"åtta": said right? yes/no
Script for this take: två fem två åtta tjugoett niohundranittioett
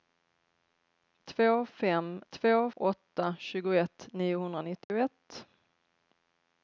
yes